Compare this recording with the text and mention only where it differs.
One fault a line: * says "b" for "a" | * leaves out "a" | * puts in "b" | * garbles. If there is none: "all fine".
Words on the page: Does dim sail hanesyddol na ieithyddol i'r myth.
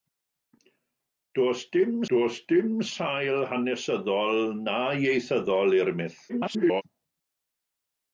* puts in "does dim"
* garbles